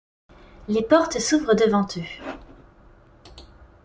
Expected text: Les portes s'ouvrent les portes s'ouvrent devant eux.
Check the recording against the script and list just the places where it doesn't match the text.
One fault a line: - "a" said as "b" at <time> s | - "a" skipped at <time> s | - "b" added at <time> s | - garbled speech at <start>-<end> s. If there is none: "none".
- "les portes s'ouvrent" skipped at 1.5 s